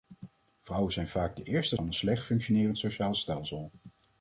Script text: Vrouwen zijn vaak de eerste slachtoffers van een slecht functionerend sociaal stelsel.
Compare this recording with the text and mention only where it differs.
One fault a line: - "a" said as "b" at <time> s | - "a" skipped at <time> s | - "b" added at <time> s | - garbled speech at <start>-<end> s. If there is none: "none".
- "slachtoffers" skipped at 1.8 s